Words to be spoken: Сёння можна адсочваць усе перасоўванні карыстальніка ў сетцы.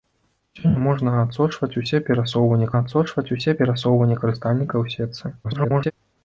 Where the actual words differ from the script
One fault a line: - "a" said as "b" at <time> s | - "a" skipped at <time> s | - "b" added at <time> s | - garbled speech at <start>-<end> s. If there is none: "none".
- "адсочваць усе перасоўванні" added at 2.8 s
- garbled speech at 5.4-5.9 s